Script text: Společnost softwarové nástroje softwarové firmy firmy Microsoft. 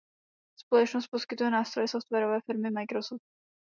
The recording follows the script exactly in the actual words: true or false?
false